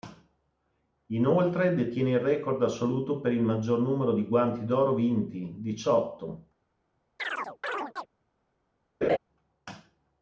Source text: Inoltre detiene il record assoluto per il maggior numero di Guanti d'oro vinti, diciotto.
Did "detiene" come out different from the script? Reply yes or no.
no